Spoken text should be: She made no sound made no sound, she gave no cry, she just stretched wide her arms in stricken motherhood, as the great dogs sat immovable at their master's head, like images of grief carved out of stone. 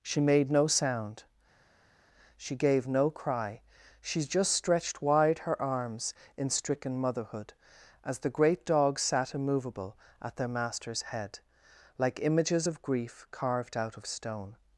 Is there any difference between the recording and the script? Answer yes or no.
yes